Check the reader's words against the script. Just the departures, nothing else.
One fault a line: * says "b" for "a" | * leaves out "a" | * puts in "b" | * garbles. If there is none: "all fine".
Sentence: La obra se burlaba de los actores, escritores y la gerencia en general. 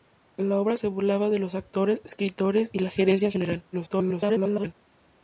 * garbles